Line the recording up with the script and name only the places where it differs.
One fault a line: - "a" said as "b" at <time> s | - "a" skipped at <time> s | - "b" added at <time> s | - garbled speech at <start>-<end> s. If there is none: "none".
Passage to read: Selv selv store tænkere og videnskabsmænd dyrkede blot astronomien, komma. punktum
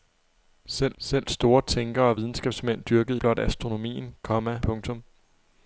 none